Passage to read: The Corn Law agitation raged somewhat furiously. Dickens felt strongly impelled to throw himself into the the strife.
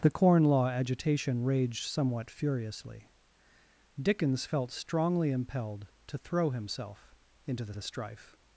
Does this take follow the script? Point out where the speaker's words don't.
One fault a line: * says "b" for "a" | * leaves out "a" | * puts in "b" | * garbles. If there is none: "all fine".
all fine